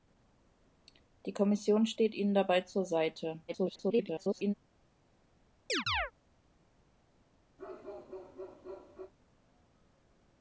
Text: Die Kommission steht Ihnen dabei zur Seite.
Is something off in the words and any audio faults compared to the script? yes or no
yes